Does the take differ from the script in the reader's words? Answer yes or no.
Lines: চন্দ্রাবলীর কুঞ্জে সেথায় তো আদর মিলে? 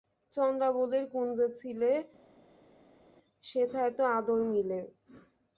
yes